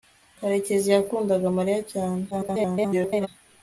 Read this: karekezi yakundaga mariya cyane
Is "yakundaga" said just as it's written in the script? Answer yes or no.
yes